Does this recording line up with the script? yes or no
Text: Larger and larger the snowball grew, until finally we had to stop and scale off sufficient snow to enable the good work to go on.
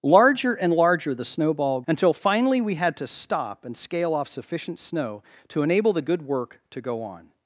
no